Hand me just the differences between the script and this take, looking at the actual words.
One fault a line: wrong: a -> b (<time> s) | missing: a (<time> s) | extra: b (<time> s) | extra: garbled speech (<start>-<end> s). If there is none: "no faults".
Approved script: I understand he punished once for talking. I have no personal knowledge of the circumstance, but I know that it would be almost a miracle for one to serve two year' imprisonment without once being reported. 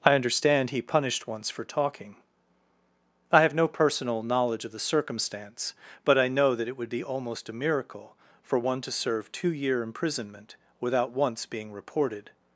no faults